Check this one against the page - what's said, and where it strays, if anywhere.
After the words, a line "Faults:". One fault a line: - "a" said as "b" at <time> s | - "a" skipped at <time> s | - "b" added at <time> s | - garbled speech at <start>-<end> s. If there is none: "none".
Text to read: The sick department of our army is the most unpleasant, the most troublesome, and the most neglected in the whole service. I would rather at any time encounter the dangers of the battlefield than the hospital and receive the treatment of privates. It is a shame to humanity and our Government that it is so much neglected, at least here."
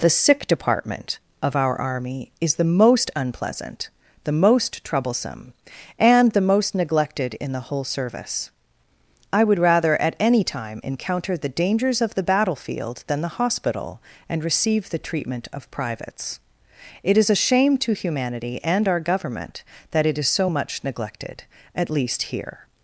The sick department of our army is the most unpleasant, the most troublesome, and the most neglected in the whole service. I would rather at any time encounter the dangers of the battlefield than the hospital and receive the treatment of privates. It is a shame to humanity and our Government that it is so much neglected, at least here."
Faults:
none